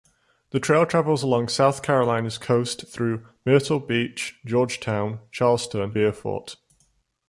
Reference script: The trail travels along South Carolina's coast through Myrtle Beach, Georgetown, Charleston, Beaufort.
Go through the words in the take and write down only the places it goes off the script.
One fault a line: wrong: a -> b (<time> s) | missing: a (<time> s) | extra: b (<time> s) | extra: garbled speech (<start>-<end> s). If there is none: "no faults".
no faults